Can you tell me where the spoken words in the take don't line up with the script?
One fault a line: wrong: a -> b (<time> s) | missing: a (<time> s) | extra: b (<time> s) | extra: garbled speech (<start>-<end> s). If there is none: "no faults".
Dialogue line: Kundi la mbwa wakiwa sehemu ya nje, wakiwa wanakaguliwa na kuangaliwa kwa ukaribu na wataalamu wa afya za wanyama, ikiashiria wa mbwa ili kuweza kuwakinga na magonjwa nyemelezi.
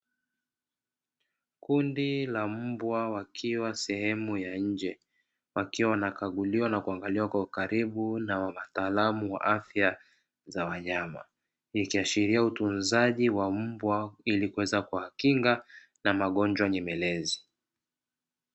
extra: utunzaji (12.4 s)